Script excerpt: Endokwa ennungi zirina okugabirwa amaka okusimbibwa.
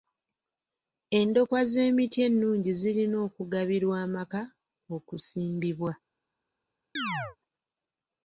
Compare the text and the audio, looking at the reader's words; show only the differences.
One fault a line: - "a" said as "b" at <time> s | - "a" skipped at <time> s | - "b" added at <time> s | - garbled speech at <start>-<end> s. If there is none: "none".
- "z'emiti" added at 1.7 s